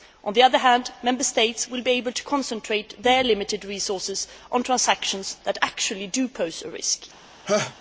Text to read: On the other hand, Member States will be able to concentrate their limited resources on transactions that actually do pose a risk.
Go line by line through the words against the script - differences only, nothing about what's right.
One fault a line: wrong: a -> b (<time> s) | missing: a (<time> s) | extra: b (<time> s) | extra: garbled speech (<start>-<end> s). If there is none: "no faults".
no faults